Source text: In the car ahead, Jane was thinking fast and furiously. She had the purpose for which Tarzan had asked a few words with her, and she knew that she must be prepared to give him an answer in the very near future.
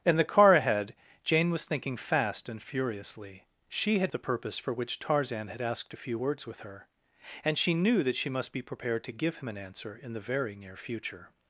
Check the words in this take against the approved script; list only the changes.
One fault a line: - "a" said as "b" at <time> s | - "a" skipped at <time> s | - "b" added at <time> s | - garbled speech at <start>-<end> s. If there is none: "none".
none